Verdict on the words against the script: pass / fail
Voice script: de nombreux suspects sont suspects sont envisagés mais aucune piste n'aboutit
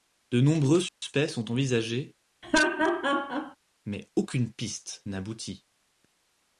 fail